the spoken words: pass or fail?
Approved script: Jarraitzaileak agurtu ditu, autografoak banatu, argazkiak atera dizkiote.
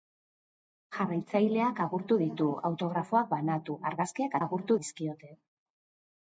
fail